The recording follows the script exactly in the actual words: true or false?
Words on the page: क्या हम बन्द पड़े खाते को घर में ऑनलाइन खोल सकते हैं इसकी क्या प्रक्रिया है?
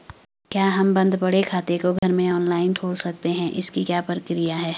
true